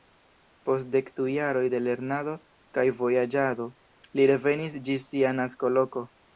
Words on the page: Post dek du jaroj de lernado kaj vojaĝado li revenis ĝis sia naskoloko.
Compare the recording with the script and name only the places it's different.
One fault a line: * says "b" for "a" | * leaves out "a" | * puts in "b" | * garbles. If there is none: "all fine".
all fine